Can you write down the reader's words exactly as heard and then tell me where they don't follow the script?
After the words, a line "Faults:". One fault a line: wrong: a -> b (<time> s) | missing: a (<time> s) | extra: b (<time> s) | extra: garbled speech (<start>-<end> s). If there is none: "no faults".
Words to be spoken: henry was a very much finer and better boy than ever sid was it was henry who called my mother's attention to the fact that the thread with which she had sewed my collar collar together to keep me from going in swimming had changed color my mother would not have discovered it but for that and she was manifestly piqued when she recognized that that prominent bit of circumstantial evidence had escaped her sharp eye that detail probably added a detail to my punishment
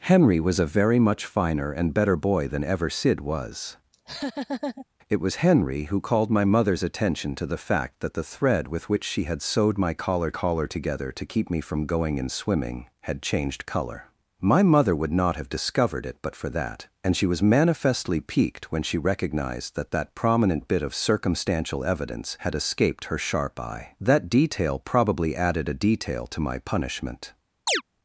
henry was a very much finer and better boy than ever sid was it was henry who called my mother's attention to the fact that the thread with which she had sewed my collar collar together to keep me from going in swimming had changed color my mother would not have discovered it but for that and she was manifestly piqued when she recognized that that prominent bit of circumstantial evidence had escaped her sharp eye that detail probably added a detail to my punishment
Faults:
no faults